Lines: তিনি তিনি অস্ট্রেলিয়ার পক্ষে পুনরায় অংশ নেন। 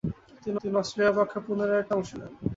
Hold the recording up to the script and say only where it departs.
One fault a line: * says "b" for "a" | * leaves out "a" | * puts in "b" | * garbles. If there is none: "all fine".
all fine